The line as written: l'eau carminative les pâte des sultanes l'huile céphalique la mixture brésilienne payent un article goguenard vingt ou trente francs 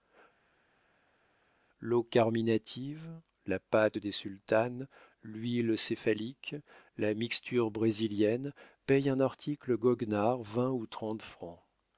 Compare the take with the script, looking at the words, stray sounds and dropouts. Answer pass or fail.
fail